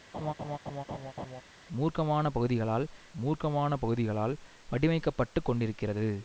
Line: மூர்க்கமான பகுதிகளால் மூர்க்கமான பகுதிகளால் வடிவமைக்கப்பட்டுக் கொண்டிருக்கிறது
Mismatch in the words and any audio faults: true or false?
true